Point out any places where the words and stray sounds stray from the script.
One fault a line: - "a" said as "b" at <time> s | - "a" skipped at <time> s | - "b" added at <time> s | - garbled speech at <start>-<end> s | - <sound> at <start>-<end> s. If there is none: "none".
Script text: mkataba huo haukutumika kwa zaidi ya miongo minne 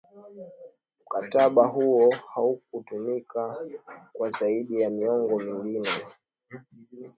none